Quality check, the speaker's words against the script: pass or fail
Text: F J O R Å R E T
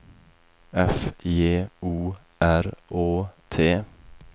fail